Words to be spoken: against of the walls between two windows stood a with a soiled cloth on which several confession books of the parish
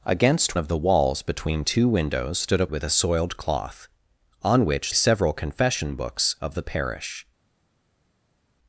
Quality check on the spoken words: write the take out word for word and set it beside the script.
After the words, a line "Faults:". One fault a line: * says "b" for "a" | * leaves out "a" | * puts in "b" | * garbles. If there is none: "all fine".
against of the walls between two windows stood a with a soiled cloth on which several confession books of the parish
Faults:
all fine